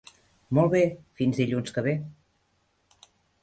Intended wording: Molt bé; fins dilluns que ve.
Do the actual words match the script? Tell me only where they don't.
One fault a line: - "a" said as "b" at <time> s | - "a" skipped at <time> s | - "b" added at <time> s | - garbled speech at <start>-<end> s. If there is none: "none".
none